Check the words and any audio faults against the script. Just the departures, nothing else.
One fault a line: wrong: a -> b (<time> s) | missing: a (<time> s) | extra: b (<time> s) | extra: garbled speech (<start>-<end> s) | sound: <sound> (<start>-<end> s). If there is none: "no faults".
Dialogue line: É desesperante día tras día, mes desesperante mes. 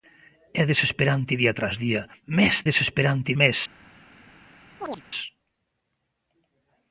sound: chirp (4.8-5.0 s)